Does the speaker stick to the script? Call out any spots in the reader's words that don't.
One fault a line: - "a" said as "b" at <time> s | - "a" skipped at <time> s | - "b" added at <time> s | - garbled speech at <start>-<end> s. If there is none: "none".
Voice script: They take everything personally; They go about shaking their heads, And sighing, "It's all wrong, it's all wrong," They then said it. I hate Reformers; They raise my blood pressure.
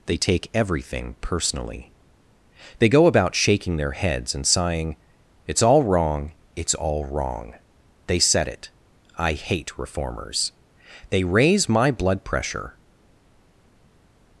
- "then" skipped at 8.2 s